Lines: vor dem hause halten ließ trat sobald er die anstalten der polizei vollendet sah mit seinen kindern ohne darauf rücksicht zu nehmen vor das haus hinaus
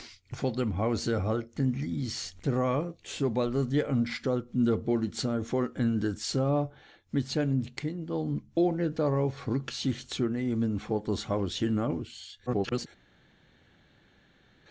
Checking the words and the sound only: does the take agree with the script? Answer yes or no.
no